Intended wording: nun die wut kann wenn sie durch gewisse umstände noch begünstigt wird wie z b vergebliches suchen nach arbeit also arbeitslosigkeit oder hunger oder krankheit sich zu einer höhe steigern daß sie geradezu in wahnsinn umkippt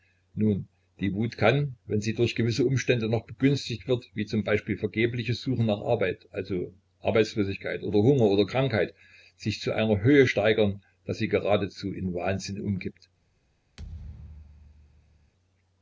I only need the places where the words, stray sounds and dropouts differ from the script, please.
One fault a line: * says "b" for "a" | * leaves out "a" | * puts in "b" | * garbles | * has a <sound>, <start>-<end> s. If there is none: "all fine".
* has a thud, 13.8-15.3 s